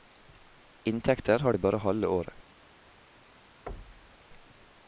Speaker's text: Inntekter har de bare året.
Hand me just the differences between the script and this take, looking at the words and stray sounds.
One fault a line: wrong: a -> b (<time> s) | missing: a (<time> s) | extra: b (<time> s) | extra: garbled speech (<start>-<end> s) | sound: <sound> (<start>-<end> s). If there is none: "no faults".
extra: halve (1.8 s)
sound: thud (3.7-4.3 s)